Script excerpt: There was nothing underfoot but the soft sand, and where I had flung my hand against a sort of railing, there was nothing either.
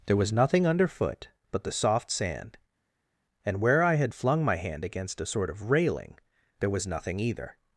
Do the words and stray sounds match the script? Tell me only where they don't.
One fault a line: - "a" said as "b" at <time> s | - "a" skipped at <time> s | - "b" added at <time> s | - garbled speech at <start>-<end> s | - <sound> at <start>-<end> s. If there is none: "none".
none